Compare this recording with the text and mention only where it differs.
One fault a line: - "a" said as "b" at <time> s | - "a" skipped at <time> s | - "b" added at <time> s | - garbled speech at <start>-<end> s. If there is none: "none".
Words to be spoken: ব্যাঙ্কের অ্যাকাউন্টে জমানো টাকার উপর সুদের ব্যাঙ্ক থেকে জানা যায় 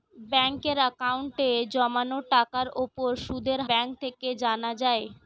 none